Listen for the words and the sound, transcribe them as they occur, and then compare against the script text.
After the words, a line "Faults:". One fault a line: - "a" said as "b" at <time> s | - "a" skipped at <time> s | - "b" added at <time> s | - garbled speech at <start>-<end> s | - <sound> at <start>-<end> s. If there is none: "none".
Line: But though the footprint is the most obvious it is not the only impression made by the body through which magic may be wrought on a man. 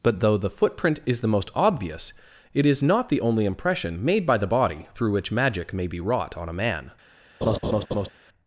But though the footprint is the most obvious it is not the only impression made by the body through which magic may be wrought on a man.
Faults:
- laugh at 7.4-8.1 s